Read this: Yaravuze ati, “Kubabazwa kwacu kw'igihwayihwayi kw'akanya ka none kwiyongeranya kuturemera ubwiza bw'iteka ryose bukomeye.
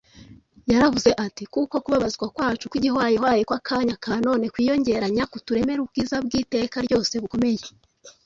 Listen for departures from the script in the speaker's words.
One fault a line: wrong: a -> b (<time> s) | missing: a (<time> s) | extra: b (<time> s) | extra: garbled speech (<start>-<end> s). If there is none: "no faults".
extra: Kuko (1.5 s)